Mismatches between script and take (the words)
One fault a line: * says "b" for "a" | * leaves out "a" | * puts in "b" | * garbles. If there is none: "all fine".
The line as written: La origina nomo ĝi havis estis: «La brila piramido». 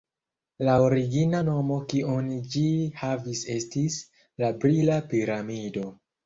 * puts in "kiun"